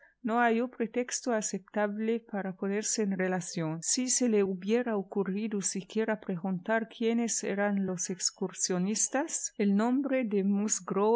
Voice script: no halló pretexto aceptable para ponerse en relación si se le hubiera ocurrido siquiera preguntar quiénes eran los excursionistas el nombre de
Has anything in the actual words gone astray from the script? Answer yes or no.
no